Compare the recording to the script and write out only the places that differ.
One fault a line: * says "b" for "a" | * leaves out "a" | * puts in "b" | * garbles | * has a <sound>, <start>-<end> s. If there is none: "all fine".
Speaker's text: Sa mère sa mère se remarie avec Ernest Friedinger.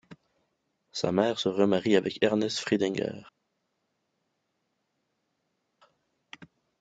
* leaves out "sa mère"